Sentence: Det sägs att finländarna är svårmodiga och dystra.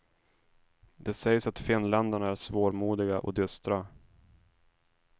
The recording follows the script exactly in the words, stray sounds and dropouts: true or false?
true